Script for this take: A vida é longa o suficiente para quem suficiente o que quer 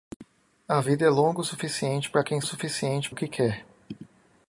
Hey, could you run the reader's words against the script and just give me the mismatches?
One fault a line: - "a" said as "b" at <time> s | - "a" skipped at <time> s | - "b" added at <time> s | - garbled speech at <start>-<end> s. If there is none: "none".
none